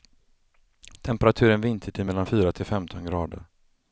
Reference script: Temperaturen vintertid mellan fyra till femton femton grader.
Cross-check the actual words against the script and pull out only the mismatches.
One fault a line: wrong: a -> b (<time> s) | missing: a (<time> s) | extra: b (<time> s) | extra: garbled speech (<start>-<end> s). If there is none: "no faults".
missing: femton (3.0 s)